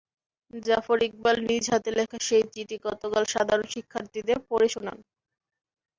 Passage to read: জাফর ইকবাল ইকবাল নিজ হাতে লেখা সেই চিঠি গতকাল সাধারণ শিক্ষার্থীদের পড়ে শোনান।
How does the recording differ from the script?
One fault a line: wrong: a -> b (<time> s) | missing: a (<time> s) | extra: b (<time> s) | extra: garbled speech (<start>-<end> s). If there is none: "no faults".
missing: ইকবাল (1.4 s)